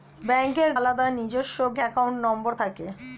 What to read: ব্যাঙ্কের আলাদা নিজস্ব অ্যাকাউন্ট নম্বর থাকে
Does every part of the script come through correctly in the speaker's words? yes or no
yes